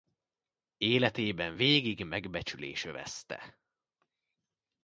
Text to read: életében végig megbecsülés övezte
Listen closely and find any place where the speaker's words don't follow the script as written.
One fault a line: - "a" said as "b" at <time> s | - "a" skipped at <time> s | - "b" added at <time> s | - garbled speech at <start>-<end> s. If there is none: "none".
none